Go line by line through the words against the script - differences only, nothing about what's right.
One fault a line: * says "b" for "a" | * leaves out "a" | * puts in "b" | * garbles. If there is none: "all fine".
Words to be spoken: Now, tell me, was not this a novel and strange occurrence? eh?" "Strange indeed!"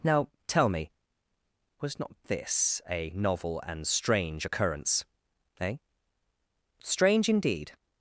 all fine